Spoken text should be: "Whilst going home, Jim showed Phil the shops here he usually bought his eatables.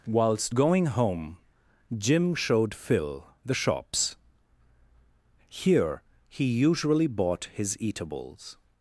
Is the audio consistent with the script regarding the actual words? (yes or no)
yes